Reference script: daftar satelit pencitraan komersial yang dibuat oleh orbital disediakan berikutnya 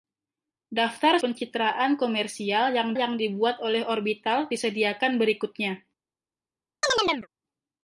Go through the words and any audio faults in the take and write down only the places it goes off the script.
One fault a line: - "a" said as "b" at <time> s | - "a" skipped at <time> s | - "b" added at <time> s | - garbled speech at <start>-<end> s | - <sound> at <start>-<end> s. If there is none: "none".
- "satelit" skipped at 1.2 s
- "yang" added at 3.0 s
- chirp at 6.8-7.3 s